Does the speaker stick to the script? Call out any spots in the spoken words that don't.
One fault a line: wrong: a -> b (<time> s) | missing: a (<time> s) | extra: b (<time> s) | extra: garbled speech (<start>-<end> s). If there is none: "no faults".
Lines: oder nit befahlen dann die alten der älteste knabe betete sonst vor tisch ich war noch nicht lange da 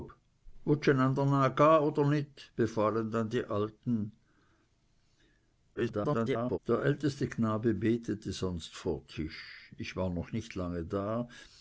extra: garbled speech (5.7-6.6 s)